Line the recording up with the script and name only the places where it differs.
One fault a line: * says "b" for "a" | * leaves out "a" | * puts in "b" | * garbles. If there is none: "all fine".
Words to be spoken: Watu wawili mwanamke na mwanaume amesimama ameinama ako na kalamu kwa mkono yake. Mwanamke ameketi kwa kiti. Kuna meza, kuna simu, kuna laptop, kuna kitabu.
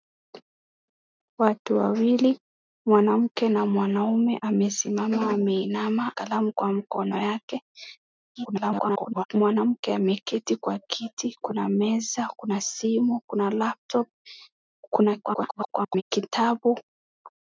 * leaves out "ako na"
* garbles
* garbles